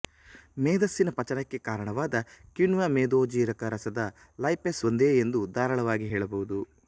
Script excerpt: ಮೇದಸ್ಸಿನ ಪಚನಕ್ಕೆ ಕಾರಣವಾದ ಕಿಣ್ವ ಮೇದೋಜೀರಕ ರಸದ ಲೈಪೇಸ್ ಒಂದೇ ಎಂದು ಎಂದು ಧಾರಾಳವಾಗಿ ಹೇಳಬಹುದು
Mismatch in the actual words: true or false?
true